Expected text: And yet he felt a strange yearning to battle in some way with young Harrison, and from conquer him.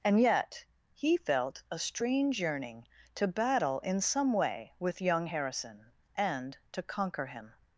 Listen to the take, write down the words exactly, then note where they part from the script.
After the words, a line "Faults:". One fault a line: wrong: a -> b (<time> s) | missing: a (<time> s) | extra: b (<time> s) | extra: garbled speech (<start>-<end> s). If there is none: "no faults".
And yet he felt a strange yearning to battle in some way with young Harrison, and to conquer him.
Faults:
wrong: from -> to (6.7 s)